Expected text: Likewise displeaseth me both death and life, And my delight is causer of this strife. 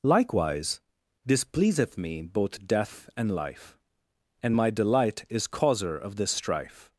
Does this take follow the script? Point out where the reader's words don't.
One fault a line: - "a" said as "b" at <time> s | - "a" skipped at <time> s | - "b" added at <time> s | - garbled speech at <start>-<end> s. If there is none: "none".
none